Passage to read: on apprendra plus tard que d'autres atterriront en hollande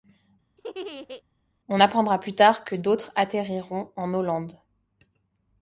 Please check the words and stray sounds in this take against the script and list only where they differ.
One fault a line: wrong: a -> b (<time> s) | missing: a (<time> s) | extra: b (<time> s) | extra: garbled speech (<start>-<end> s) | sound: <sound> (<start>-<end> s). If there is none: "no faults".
sound: laugh (0.6-1.2 s)